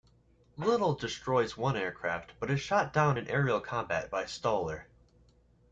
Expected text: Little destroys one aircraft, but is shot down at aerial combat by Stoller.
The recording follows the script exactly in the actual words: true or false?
false